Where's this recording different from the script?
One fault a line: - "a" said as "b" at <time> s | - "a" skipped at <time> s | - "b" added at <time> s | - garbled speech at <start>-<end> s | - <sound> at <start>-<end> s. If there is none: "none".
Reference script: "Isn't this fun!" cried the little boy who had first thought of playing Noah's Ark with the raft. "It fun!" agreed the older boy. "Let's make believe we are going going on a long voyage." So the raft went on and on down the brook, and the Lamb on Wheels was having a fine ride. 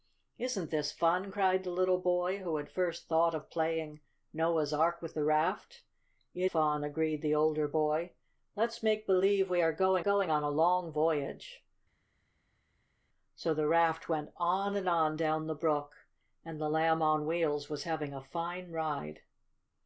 none